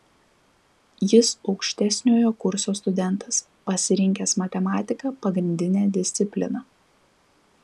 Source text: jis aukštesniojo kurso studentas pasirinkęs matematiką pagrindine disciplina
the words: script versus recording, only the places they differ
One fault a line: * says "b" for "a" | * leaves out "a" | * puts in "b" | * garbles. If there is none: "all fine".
all fine